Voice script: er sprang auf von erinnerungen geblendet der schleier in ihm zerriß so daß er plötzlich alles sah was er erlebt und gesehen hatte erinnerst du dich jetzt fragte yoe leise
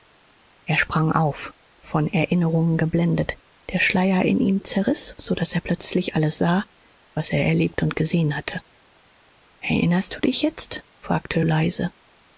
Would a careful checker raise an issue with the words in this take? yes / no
yes